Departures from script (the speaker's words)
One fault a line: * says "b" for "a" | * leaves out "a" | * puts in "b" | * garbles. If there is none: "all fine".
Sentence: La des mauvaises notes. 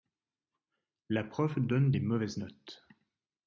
* puts in "prof donne"